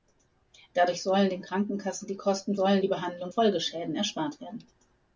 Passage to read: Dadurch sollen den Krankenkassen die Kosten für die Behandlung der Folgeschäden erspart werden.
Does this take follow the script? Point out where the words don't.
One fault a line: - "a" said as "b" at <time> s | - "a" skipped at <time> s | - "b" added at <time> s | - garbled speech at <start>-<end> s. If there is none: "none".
- "für" said as "sollen" at 2.5 s
- "der" skipped at 3.3 s